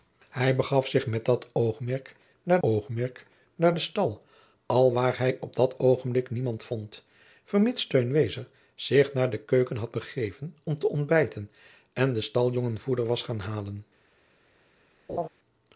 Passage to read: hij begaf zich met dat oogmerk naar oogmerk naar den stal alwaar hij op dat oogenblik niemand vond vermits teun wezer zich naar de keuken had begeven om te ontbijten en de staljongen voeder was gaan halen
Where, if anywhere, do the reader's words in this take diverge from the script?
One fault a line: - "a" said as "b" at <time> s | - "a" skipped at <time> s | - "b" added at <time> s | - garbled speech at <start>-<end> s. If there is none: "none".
none